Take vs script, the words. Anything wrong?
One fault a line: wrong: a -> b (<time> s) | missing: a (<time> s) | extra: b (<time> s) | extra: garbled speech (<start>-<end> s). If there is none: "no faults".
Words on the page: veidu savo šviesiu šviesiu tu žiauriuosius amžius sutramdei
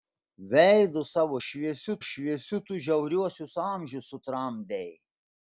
no faults